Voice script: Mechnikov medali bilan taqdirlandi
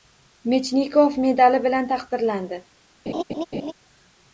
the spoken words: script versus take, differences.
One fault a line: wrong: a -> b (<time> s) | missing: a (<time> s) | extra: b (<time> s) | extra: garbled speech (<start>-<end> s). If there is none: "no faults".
no faults